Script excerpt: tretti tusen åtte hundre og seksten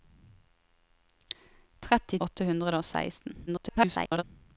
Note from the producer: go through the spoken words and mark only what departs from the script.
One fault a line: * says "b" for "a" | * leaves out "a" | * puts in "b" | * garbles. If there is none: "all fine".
* leaves out "tusen"
* garbles